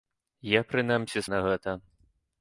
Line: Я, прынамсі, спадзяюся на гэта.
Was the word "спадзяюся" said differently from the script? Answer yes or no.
yes